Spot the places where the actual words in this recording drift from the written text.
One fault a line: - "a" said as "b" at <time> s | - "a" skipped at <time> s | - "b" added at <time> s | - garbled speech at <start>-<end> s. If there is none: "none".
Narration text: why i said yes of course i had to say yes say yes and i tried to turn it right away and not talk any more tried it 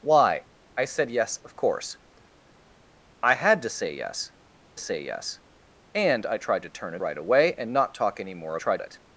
none